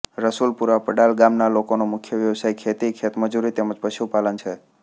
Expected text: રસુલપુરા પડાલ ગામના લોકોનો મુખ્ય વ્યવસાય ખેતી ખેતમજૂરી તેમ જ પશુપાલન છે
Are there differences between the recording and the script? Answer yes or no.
no